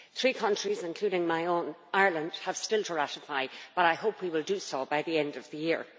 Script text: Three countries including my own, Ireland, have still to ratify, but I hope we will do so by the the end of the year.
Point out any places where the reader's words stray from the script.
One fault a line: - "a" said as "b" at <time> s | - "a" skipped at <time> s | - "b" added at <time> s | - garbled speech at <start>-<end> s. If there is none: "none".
- "the" skipped at 5.2 s